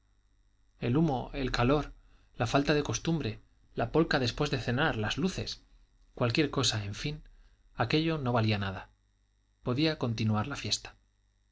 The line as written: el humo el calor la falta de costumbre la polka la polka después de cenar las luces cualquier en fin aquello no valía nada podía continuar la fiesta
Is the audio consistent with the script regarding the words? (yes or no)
no